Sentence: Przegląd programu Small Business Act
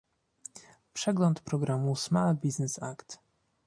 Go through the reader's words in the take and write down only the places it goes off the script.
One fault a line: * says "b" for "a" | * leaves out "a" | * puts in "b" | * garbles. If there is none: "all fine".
all fine